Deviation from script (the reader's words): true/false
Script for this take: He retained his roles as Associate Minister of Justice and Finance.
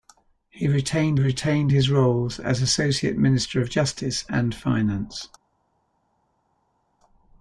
true